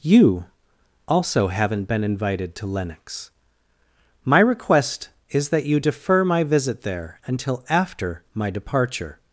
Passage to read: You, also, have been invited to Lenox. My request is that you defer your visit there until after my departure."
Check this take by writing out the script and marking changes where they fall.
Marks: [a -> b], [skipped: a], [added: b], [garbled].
You, also, [have -> haven't] been invited to Lenox. My request is that you defer [your -> my] visit there until after my departure."